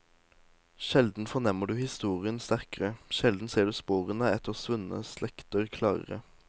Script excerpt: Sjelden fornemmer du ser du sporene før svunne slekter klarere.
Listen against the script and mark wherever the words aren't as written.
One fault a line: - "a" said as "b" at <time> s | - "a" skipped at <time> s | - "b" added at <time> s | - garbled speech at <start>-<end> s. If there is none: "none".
- "historien sterkere sjelden" added at 1.8 s
- "før" said as "etter" at 4.3 s